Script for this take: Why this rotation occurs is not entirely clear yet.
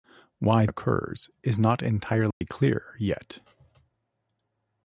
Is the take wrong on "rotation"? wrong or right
wrong